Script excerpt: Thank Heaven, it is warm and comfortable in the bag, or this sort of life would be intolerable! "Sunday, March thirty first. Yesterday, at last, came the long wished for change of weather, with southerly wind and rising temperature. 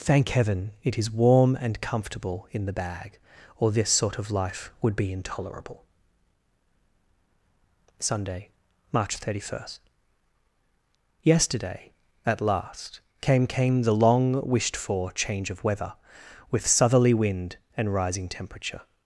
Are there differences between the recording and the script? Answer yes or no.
yes